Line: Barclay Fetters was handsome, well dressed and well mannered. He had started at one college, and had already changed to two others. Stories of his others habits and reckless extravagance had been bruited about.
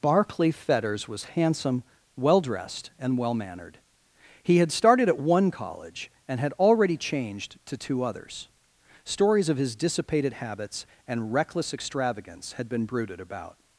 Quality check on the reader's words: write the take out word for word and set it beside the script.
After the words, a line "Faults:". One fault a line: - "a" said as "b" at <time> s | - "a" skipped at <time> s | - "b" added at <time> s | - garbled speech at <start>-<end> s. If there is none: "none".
Barclay Fetters was handsome, well dressed and well mannered. He had started at one college, and had already changed to two others. Stories of his dissipated habits and reckless extravagance had been bruited about.
Faults:
- "others" said as "dissipated" at 9.8 s